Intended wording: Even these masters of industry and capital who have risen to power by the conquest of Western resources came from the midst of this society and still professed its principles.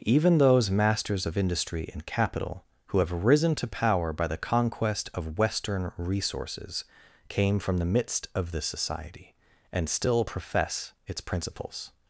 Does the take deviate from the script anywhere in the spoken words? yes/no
yes